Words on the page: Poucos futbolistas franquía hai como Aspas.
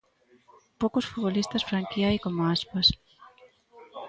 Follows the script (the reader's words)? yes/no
yes